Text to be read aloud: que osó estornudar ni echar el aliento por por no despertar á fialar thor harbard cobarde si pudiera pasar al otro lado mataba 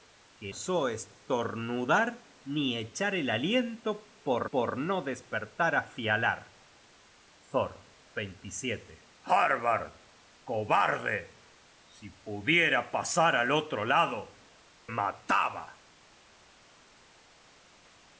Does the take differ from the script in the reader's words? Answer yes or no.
no